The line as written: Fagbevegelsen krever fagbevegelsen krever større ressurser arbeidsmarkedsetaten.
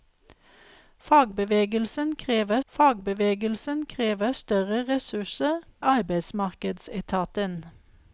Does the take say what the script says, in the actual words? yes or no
yes